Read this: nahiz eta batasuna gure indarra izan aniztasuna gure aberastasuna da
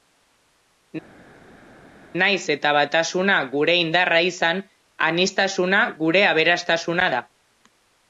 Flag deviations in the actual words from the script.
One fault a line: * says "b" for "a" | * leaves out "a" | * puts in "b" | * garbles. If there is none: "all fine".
all fine